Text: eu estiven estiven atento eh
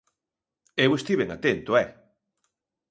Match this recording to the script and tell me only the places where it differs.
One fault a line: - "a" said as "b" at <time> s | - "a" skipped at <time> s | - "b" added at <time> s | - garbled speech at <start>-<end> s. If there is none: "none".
- "estiven" skipped at 1.3 s